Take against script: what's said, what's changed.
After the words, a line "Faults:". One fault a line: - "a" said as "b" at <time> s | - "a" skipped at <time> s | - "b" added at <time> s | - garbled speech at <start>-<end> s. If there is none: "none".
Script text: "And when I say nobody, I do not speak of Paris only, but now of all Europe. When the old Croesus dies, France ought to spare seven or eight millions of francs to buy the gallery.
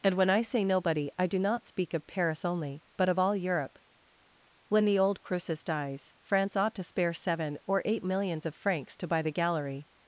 "And when I say nobody, I do not speak of Paris only, but of all Europe. When the old Croesus dies, France ought to spare seven or eight millions of francs to buy the gallery.
Faults:
- "now" skipped at 3.1 s